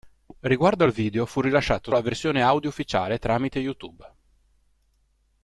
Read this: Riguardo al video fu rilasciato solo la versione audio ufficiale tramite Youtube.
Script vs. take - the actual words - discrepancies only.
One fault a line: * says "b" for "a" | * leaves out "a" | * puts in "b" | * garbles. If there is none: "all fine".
* leaves out "solo"